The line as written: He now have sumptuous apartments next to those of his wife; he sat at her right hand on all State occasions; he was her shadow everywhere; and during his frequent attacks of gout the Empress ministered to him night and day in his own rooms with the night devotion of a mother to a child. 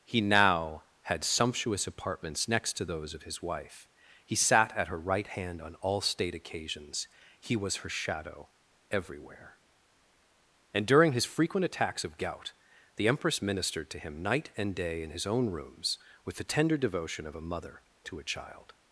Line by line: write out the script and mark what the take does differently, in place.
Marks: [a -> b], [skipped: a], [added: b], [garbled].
He now [have -> had] sumptuous apartments next to those of his wife; he sat at her right hand on all State occasions; he was her shadow everywhere; and during his frequent attacks of gout the Empress ministered to him night and day in his own rooms with the [night -> tender] devotion of a mother to a child.